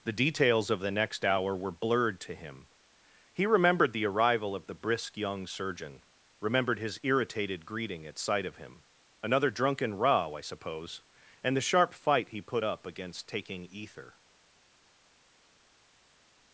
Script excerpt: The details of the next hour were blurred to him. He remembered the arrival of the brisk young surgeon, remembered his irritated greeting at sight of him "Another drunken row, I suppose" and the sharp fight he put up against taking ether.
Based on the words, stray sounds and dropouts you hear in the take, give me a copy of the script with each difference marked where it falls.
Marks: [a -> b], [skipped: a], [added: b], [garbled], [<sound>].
The details of the next hour were blurred to him. He remembered the arrival of the brisk young surgeon, remembered his irritated greeting at sight of him "Another drunken row, I suppose" and the sharp fight he put up against taking ether.